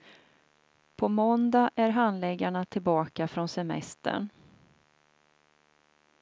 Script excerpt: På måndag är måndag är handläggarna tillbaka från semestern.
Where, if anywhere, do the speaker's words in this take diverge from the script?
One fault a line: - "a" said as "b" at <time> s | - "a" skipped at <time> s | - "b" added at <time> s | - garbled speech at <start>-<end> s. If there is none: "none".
- "måndag är" skipped at 1.9 s